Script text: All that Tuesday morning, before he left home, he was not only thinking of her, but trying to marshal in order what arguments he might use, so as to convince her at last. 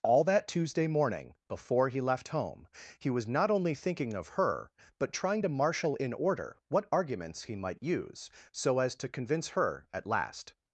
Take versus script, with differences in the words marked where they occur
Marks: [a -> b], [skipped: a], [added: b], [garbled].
All that Tuesday morning, before he left home, he was not only thinking of her, but trying to marshal in order what arguments he might use, so as to convince her at last.